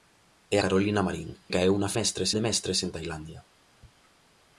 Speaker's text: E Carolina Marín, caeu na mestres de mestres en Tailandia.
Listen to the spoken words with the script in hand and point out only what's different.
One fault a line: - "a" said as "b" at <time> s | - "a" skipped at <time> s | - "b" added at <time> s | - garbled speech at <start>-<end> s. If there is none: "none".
none